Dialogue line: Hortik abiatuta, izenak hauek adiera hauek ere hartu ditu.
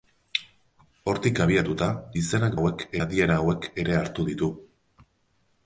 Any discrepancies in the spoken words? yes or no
no